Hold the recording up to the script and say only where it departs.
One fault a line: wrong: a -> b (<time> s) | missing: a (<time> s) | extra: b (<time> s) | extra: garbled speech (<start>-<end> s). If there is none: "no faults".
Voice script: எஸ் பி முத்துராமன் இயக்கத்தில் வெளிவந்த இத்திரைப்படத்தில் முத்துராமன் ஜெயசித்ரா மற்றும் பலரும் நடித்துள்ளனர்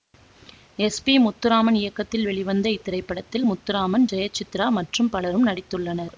no faults